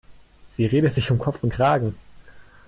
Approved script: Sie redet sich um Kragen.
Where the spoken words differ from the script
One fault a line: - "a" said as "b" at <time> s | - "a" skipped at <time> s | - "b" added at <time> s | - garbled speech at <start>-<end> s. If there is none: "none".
- "Kopf und" added at 1.2 s